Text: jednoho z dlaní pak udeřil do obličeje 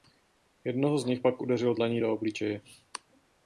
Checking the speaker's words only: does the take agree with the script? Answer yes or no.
no